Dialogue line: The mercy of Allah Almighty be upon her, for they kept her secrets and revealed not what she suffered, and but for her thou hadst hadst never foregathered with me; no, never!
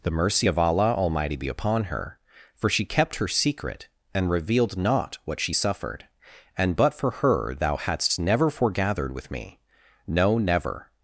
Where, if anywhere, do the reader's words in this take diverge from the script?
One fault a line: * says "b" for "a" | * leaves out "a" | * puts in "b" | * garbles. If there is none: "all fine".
* says "she" for "they"
* says "secret" for "secrets"
* leaves out "hadst"